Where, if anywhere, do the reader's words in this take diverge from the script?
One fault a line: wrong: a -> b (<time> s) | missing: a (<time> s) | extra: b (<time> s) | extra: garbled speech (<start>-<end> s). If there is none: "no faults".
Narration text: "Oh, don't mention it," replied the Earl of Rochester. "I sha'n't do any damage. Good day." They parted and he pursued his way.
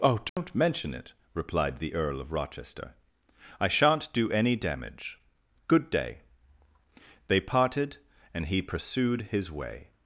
no faults